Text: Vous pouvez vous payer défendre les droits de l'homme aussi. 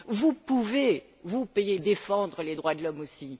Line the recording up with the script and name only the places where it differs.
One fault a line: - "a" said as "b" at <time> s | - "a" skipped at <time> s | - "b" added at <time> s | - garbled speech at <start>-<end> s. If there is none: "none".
none